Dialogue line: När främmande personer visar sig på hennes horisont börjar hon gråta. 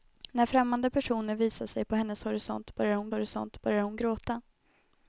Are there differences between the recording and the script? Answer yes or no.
yes